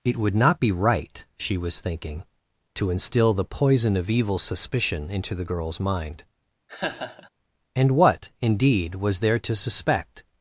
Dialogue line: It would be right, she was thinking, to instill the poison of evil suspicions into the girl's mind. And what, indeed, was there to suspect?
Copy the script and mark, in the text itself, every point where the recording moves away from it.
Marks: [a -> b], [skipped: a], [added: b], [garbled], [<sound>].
It would [added: not] be right, she was thinking, to instill the poison of evil [suspicions -> suspicion] into the girl's mind. [laugh] And what, indeed, was there to suspect?